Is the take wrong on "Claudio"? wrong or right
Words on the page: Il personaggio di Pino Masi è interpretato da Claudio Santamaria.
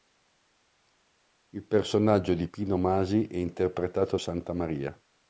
wrong